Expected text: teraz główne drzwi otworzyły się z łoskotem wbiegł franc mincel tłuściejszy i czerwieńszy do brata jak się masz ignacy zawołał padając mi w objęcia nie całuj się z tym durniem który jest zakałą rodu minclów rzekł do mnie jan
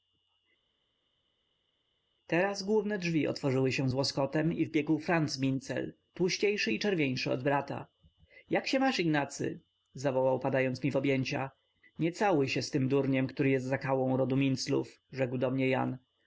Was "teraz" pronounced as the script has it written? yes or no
yes